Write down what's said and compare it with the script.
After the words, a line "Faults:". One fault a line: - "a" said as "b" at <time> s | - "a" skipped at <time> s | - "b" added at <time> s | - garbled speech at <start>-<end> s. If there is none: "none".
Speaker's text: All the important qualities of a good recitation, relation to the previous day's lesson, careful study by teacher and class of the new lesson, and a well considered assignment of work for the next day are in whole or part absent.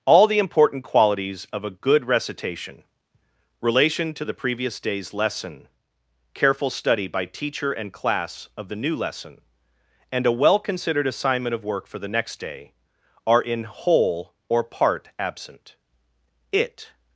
All the important qualities of a good recitation, relation to the previous day's lesson, careful study by teacher and class of the new lesson, and a well considered assignment of work for the next day are in whole or part absent. It
Faults:
- "It" added at 16.5 s